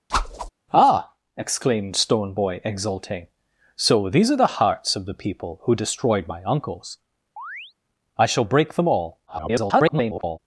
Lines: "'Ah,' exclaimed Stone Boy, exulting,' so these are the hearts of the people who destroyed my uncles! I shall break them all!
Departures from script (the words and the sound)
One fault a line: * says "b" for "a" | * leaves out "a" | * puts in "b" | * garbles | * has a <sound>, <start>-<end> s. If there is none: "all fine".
* has a whoosh, 0.1-0.5 s
* has a chirp, 7.4-7.7 s
* garbles